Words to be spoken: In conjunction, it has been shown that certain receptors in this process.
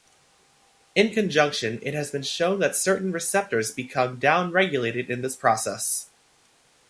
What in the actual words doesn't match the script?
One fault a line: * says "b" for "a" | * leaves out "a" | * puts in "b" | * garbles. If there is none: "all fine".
* puts in "become down regulated"